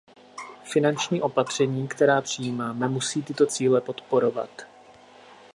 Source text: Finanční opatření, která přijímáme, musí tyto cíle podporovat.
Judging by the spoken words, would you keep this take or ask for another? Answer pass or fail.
pass